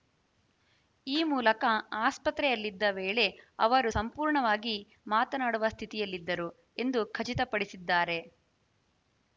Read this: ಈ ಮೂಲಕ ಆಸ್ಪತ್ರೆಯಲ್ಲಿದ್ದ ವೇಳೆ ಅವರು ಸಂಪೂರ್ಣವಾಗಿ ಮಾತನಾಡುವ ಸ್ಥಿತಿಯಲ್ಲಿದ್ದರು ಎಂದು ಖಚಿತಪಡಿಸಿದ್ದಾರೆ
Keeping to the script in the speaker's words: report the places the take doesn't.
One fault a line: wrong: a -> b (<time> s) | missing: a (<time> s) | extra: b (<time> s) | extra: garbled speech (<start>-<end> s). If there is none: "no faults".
no faults